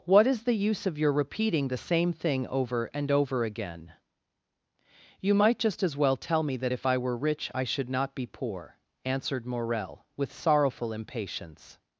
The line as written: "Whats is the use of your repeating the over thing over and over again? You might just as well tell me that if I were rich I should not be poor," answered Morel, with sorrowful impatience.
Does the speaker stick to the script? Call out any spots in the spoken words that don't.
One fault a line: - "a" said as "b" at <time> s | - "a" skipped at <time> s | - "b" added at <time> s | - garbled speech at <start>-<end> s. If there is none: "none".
- "Whats" said as "What" at 0.1 s
- "over" said as "same" at 1.8 s